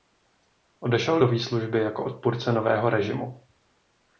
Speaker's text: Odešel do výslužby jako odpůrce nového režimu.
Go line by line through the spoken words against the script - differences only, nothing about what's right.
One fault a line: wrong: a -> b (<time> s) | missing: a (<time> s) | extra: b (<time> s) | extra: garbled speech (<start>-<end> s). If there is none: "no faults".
no faults